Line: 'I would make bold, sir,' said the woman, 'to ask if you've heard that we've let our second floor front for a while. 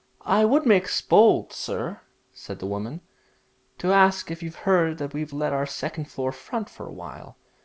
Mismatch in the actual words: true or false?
false